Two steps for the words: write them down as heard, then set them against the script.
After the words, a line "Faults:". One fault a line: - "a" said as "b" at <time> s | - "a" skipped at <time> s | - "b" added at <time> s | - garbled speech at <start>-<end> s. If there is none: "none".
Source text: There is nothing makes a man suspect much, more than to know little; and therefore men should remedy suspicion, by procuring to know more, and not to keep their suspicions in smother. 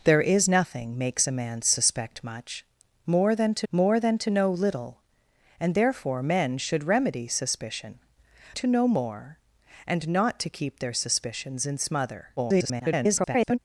There is nothing makes a man suspect much, more than to more than to know little; and therefore men should remedy suspicion, to know more, and not to keep their suspicions in smother. [garbled]
Faults:
- "more than to" added at 3.7 s
- "by procuring" skipped at 8.0 s
- garbled speech at 12.4-13.6 s